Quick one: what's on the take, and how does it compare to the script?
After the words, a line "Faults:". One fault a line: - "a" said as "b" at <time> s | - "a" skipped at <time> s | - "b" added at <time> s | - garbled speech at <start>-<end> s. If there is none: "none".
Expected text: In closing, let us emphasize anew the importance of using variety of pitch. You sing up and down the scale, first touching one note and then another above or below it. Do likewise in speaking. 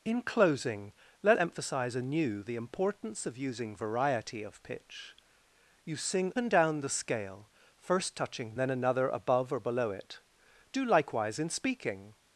In closing, let emphasize anew the importance of using variety of pitch. You sing and down the scale, first touching then another above or below it. Do likewise in speaking.
Faults:
- "us" skipped at 1.4 s
- "up" skipped at 6.3 s
- "one note and" skipped at 8.6 s